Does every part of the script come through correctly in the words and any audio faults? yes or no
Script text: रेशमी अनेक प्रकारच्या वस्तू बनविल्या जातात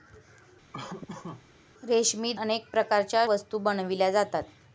no